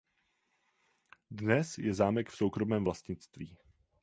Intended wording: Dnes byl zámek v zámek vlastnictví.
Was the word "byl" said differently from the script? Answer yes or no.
yes